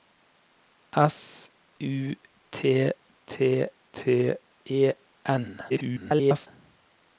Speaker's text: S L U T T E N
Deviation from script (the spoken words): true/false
true